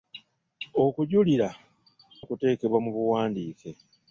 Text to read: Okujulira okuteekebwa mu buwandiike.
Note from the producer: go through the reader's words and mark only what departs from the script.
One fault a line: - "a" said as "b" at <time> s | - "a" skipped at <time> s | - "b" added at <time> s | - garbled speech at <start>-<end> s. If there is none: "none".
none